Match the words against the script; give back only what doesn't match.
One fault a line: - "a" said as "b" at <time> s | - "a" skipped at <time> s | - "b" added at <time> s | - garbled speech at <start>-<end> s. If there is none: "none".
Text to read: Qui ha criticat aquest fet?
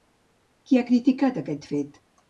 none